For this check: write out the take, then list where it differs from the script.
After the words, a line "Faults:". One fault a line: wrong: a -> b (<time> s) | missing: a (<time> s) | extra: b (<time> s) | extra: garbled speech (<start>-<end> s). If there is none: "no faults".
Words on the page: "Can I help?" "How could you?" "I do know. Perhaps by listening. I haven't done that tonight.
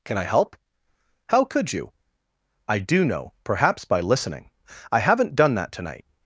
"Can I help?" "How could you?" "I do know. Perhaps by listening. I haven't done that tonight.
Faults:
no faults